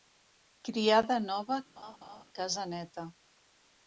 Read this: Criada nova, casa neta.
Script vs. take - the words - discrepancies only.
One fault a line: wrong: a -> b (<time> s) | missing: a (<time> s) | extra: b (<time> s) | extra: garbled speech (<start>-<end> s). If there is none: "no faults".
no faults